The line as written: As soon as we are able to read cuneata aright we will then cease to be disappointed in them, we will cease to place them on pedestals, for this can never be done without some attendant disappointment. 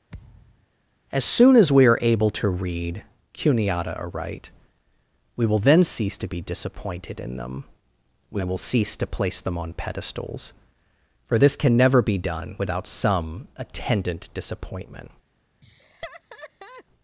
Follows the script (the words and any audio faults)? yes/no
no